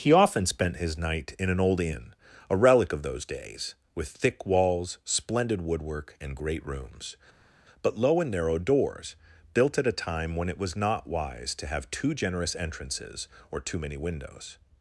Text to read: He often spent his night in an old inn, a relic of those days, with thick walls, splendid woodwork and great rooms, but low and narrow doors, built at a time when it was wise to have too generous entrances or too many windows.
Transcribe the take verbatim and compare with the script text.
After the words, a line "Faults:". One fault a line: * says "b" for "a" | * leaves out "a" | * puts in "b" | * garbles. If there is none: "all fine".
He often spent his night in an old inn, a relic of those days, with thick walls, splendid woodwork and great rooms, but low and narrow doors, built at a time when it was not wise to have too generous entrances or too many windows.
Faults:
* puts in "not"